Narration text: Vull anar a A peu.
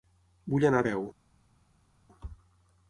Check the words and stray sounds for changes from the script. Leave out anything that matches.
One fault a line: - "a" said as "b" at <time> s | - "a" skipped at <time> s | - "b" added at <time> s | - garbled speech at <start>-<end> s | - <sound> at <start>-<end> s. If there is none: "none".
none